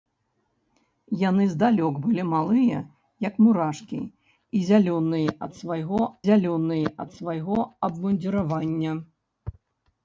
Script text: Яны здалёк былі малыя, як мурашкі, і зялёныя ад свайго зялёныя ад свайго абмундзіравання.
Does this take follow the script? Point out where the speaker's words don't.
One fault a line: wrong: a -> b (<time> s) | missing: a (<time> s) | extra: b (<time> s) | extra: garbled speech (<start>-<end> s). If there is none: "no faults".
no faults